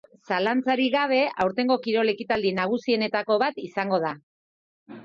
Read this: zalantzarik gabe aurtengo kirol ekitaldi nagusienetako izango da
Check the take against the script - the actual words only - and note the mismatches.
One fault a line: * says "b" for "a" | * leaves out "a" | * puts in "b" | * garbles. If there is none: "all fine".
* puts in "bat"